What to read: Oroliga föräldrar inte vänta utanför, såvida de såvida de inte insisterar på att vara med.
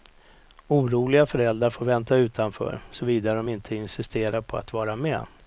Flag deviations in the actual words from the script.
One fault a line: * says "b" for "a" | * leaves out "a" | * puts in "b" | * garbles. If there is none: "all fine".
* says "får" for "inte"
* leaves out "såvida de"